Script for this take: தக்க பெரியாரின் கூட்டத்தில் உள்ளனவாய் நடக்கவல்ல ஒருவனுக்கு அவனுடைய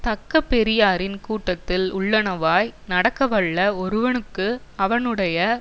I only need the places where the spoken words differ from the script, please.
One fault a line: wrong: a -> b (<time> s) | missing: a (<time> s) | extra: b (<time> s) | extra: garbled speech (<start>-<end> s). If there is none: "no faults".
no faults